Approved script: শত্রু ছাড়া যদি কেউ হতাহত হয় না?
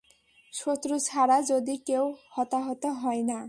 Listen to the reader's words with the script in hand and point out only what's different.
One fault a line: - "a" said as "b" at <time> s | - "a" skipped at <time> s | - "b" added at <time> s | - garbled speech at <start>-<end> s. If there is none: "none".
none